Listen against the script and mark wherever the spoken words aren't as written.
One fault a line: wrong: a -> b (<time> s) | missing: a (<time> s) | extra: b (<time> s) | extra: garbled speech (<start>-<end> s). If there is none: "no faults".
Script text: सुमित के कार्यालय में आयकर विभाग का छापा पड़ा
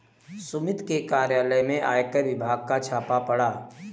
no faults